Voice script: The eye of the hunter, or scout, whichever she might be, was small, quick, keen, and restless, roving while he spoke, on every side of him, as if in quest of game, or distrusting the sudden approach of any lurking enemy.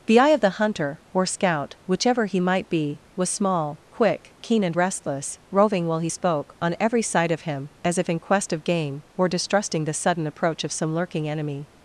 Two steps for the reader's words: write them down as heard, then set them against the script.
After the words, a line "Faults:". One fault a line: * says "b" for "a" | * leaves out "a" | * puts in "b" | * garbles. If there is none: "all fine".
The eye of the hunter, or scout, whichever he might be, was small, quick, keen, and restless, roving while he spoke, on every side of him, as if in quest of game, or distrusting the sudden approach of some lurking enemy.
Faults:
* says "he" for "she"
* says "some" for "any"